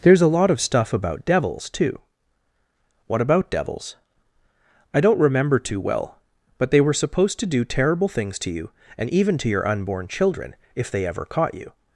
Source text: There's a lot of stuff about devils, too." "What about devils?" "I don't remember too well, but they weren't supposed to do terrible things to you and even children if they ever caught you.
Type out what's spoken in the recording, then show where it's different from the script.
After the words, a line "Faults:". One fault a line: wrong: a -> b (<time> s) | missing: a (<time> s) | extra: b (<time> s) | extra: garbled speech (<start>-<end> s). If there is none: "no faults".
There's a lot of stuff about devils, too." "What about devils?" "I don't remember too well, but they were supposed to do terrible things to you and even to your unborn children if they ever caught you.
Faults:
wrong: weren't -> were (6.8 s)
extra: to your unborn (9.4 s)